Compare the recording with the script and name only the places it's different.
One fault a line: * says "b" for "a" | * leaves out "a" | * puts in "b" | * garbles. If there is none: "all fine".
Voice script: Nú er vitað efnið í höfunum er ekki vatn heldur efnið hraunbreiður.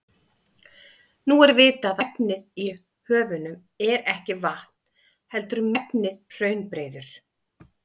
all fine